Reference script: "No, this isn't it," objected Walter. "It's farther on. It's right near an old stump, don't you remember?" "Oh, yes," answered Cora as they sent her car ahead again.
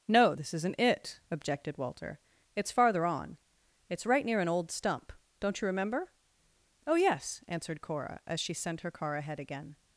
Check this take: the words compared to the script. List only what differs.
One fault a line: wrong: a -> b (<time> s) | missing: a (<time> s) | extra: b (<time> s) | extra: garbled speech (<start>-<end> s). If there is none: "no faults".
wrong: they -> she (8.4 s)